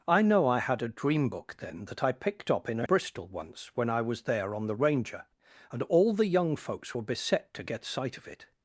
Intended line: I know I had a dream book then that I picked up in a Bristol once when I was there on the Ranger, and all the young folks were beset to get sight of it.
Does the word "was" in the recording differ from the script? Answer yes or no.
no